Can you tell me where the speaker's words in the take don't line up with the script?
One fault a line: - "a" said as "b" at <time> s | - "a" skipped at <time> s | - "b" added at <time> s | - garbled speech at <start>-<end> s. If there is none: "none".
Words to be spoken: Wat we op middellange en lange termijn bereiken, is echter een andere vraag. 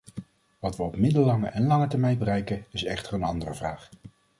none